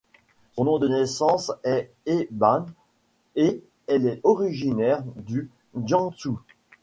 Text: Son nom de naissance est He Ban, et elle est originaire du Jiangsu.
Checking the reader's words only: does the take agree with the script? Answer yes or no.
yes